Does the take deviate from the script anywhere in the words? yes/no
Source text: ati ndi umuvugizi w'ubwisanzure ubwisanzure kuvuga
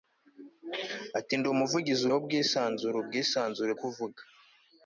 no